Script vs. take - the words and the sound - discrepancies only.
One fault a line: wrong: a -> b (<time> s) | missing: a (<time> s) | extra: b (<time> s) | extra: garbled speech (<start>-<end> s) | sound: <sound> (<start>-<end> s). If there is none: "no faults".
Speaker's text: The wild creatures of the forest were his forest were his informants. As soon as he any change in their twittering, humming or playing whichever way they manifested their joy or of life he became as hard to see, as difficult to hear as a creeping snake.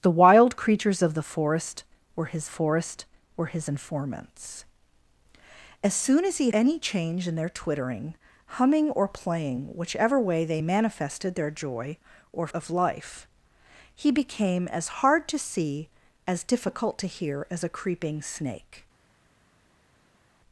no faults